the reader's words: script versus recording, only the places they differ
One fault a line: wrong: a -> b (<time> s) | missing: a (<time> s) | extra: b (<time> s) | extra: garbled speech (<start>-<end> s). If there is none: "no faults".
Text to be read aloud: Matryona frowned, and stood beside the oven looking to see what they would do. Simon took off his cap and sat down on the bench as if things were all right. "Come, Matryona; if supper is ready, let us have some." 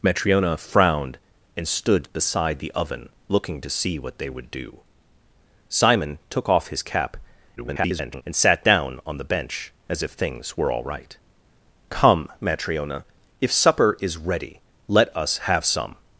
extra: garbled speech (7.6-8.2 s)